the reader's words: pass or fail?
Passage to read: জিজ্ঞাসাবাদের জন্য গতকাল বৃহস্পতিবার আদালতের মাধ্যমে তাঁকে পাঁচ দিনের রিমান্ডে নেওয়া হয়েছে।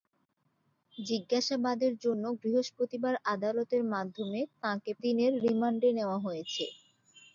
fail